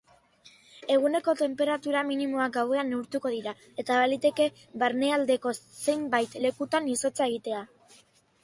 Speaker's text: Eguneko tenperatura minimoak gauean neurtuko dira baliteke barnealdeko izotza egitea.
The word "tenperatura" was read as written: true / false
true